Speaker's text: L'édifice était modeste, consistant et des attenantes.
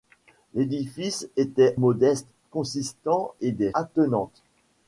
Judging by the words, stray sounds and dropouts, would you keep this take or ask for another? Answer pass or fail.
pass